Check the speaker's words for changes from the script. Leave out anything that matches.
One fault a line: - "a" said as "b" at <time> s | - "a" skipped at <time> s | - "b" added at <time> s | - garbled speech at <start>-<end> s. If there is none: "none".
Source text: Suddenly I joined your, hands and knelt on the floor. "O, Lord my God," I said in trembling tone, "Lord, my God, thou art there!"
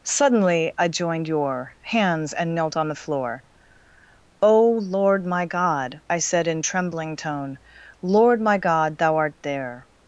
none